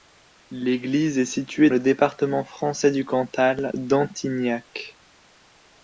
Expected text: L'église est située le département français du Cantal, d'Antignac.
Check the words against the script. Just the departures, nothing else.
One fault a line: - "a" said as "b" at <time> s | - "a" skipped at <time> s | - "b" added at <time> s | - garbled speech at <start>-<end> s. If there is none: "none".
none